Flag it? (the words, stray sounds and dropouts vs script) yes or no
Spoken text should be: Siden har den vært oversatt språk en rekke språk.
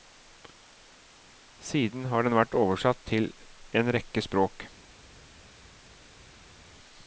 yes